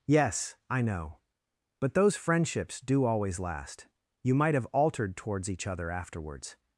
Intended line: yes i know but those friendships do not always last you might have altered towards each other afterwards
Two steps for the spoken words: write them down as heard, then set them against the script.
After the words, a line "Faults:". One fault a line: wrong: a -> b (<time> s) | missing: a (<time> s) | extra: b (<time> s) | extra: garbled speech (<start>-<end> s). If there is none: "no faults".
yes i know but those friendships do always last you might have altered towards each other afterwards
Faults:
missing: not (3.0 s)